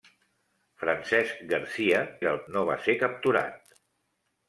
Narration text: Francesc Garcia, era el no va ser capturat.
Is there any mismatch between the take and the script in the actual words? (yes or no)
no